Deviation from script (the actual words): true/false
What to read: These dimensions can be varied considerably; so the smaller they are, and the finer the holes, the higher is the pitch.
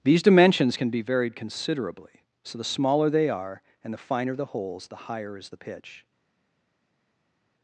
false